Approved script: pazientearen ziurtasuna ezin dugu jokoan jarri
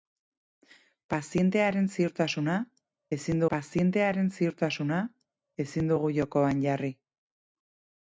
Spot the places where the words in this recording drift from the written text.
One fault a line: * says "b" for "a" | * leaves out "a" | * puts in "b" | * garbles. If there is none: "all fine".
* puts in "pazientearen ziurtasuna ezin"